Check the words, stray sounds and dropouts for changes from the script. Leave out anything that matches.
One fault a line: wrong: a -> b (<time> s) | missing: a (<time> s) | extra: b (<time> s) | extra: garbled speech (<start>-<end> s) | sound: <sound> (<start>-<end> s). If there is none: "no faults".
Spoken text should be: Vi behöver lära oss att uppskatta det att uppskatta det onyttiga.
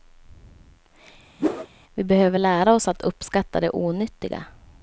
sound: whoosh (1.4-1.7 s)
missing: att uppskatta det (3.7 s)